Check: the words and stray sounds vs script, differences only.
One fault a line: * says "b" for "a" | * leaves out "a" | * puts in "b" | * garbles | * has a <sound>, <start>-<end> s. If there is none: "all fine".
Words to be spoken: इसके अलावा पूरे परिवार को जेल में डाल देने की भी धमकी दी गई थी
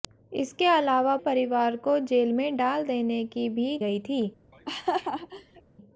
* leaves out "पूरे"
* leaves out "धमकी दी"
* has a laugh, 4.5-5.6 s